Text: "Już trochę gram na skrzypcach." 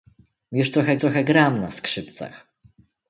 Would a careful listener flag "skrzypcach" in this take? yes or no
no